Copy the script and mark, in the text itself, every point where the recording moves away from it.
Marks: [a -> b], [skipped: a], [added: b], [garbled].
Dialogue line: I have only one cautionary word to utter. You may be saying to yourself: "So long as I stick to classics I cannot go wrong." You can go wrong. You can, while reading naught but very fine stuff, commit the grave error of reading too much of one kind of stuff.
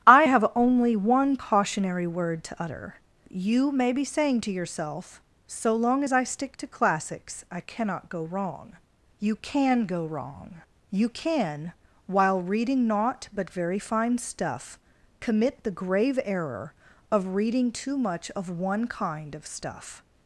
I have only one cautionary word to utter. You may be saying to yourself: "So long as I stick to classics I cannot go wrong." You can go wrong. You can, while reading naught but very fine stuff, commit the grave error of reading too much of one kind of stuff.